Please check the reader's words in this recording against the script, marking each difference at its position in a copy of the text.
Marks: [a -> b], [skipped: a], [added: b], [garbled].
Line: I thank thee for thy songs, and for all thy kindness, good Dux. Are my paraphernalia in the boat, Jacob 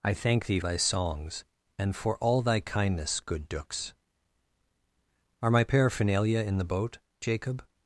I thank thee [skipped: for] thy songs, and for all thy kindness, good Dux. Are my paraphernalia in the boat, Jacob